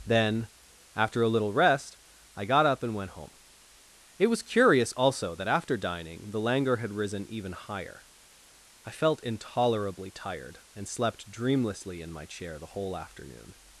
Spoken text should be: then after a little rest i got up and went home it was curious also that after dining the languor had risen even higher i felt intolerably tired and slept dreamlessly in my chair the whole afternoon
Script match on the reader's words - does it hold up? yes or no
yes